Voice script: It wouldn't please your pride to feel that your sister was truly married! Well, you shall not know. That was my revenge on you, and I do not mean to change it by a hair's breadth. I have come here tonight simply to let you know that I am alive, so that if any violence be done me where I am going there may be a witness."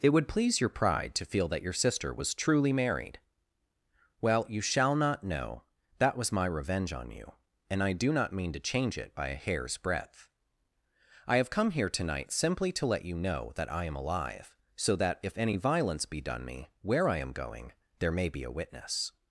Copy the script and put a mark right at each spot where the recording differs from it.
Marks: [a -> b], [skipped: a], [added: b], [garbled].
It [wouldn't -> would] please your pride to feel that your sister was truly married! Well, you shall not know. That was my revenge on you, and I do not mean to change it by a hair's breadth. I have come here tonight simply to let you know that I am alive, so that if any violence be done me where I am going there may be a witness."